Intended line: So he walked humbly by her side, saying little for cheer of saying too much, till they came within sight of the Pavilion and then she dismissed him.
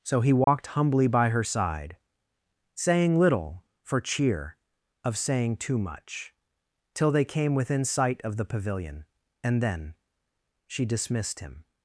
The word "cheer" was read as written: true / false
true